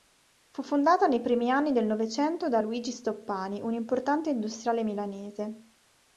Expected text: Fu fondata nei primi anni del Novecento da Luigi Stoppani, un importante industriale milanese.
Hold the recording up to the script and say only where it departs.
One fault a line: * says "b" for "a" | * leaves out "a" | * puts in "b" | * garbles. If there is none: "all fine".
all fine